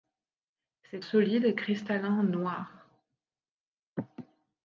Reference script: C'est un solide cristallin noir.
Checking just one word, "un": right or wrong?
wrong